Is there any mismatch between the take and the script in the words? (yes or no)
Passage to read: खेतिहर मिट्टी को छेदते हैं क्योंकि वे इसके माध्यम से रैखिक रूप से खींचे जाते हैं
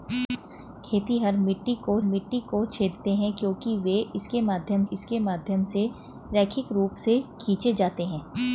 yes